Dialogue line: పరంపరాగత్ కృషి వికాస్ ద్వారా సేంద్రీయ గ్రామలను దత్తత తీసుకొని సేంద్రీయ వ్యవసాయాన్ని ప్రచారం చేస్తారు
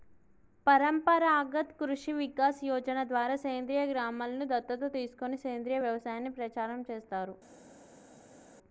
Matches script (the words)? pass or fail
fail